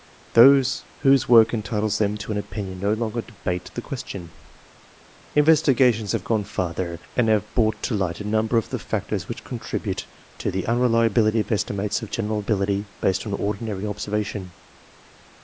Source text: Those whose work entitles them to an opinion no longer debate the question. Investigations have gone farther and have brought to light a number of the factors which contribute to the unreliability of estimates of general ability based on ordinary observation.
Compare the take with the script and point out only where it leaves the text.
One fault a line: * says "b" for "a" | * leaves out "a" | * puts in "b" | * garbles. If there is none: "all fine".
all fine